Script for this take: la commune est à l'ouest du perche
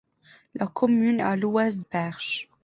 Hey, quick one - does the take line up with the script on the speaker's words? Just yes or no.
no